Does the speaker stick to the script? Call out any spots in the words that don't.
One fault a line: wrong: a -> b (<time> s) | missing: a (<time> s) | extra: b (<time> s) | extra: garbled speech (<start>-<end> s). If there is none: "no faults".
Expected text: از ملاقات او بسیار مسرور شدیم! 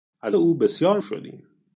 missing: ملاقات (0.4 s)
missing: مسرور (1.0 s)